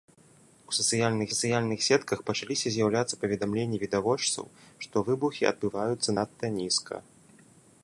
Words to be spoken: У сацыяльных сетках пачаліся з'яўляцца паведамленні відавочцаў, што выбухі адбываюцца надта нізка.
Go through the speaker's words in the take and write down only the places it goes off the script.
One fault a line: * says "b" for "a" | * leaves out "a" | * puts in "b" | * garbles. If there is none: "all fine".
* puts in "сацыяльных"